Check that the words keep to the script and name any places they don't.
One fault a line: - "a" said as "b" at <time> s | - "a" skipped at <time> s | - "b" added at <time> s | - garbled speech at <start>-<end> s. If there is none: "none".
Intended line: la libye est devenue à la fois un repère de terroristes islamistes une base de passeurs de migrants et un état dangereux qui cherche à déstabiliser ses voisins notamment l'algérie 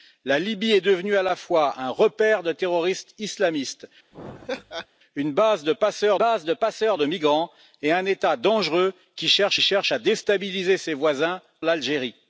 - "base" added at 6.2 s
- "passeurs de" added at 6.5 s
- "cherche" added at 9.6 s
- "notamment" skipped at 11.4 s